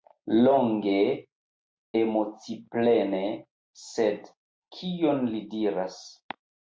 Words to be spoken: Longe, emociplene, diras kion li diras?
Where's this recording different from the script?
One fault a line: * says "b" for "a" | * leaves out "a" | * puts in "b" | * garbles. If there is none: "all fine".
* says "sed" for "diras"